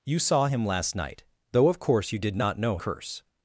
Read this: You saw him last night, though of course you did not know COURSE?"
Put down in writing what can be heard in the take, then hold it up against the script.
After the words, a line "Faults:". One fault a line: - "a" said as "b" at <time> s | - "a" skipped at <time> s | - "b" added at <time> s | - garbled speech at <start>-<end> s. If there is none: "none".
You saw him last night, though of course you did not know COURSE?"
Faults:
none